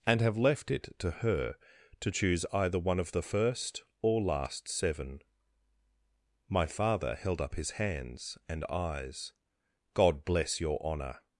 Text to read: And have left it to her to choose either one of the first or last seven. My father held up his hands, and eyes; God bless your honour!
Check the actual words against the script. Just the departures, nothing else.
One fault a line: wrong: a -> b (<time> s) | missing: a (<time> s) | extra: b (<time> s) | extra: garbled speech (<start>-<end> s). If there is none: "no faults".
no faults